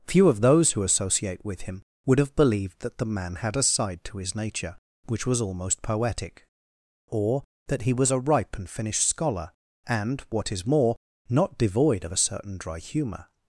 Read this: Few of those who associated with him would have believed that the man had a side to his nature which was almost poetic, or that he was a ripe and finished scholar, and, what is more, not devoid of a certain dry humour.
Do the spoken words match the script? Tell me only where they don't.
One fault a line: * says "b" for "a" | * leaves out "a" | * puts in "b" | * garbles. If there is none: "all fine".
* says "associate" for "associated"